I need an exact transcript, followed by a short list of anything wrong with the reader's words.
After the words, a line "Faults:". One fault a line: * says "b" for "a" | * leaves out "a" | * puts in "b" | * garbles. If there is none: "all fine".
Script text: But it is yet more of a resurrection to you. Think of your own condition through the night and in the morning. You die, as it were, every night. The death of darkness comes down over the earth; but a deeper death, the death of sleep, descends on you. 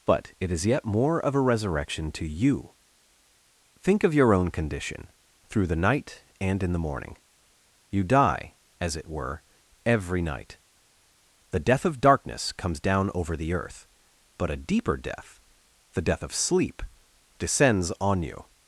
But it is yet more of a resurrection to you. Think of your own condition through the night and in the morning. You die, as it were, every night. The death of darkness comes down over the earth; but a deeper death, the death of sleep, descends on you.
Faults:
all fine